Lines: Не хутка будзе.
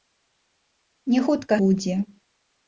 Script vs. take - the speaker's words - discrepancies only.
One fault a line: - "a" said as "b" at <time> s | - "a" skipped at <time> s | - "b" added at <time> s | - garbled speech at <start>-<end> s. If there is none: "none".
none